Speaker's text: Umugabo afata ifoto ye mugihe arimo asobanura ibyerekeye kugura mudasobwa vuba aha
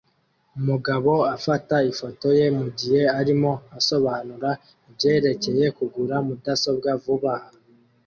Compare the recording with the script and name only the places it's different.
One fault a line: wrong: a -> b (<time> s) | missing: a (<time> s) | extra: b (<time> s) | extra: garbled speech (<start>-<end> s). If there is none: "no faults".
no faults